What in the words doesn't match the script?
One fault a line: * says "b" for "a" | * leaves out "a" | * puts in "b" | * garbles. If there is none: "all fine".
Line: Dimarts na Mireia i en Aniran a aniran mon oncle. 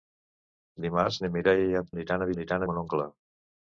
all fine